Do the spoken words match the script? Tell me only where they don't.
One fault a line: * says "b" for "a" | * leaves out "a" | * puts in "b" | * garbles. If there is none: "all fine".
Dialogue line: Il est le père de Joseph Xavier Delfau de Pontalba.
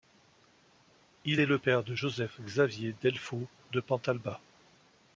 all fine